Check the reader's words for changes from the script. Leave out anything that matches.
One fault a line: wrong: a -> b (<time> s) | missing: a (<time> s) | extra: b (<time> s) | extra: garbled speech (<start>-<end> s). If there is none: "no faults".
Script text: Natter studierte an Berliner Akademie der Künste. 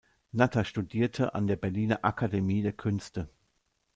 extra: der (1.5 s)